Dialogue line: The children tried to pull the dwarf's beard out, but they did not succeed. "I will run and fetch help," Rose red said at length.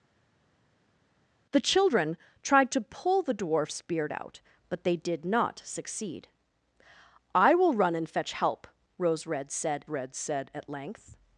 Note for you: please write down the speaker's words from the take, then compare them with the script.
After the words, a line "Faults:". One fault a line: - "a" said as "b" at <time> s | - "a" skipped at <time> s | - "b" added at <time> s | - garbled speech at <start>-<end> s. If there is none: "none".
The children tried to pull the dwarf's beard out, but they did not succeed. "I will run and fetch help," Rose red said red said at length.
Faults:
- "red said" added at 9.9 s